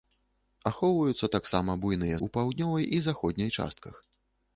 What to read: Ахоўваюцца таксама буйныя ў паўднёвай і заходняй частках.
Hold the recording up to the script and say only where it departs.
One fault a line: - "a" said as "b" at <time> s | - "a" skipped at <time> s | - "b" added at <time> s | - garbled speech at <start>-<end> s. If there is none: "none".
none